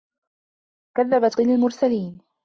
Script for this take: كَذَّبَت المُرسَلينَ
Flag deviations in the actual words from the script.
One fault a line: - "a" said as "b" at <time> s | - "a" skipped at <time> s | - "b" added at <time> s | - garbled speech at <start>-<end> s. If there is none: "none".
none